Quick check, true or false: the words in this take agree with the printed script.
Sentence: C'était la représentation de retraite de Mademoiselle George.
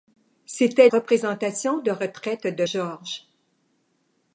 false